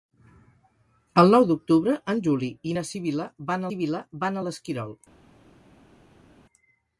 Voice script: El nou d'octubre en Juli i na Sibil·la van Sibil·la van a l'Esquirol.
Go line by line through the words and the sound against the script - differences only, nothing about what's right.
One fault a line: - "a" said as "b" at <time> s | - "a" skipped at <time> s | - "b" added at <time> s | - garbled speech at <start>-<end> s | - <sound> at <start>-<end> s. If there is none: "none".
none